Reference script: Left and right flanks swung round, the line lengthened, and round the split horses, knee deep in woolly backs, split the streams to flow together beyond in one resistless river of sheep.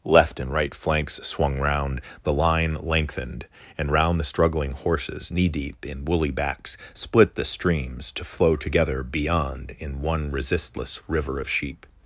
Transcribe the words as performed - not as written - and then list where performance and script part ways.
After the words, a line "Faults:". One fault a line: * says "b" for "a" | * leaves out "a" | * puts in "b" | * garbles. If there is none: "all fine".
Left and right flanks swung round, the line lengthened, and round the struggling horses, knee deep in woolly backs, split the streams to flow together beyond in one resistless river of sheep.
Faults:
* says "struggling" for "split"